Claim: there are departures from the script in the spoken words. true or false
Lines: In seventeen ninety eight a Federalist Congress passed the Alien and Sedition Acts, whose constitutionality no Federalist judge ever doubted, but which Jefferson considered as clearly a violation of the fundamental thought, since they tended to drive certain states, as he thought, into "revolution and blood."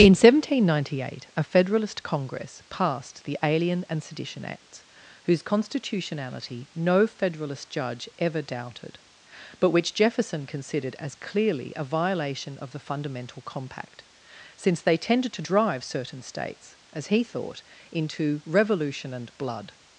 true